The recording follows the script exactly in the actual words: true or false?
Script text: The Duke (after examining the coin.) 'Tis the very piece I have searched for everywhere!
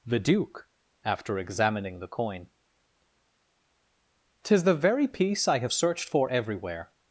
true